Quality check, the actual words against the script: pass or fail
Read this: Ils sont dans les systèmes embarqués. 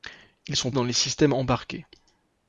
pass